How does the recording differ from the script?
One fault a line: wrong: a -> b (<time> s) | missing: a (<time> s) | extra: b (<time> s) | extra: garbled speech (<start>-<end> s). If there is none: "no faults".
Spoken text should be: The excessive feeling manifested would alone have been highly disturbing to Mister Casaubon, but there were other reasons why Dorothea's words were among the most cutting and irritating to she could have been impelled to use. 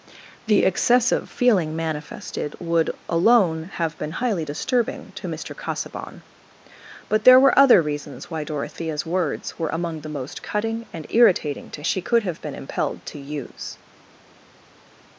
no faults